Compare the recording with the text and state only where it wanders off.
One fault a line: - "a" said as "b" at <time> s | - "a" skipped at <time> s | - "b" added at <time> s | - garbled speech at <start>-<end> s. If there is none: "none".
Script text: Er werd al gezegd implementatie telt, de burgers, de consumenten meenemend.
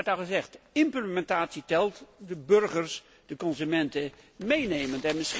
none